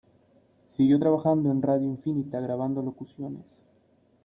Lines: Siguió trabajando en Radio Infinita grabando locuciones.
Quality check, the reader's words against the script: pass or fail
pass